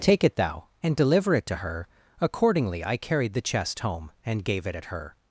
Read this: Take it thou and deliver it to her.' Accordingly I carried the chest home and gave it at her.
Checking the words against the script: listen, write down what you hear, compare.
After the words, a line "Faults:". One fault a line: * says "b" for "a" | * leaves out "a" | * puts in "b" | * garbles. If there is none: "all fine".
Take it thou and deliver it to her.' Accordingly I carried the chest home and gave it at her.
Faults:
all fine